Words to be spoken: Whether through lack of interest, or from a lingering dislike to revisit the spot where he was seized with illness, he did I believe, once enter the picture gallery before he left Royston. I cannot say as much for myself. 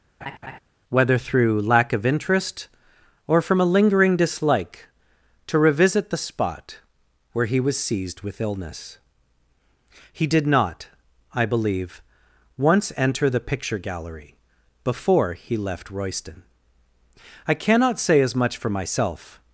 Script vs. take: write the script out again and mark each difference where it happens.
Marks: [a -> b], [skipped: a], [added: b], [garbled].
Whether through lack of interest, or from a lingering dislike to revisit the spot where he was seized with illness, he did [added: not] I believe, once enter the picture gallery before he left Royston. I cannot say as much for myself.